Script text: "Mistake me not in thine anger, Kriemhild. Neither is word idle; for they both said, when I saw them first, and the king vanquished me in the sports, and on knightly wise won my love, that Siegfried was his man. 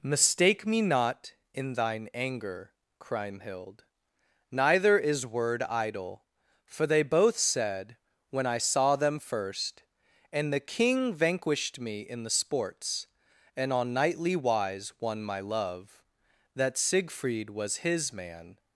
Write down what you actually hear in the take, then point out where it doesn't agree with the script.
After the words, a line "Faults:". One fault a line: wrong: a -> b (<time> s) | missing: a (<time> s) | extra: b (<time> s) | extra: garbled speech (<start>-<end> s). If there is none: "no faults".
"Mistake me not in thine anger, Kriemhild. Neither is word idle; for they both said, when I saw them first, and the king vanquished me in the sports, and on knightly wise won my love, that Siegfried was his man.
Faults:
no faults